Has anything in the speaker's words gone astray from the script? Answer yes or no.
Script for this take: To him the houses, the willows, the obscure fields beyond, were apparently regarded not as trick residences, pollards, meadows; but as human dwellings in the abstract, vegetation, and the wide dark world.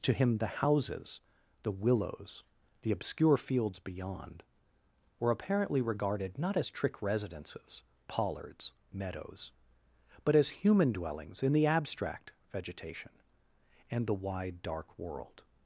no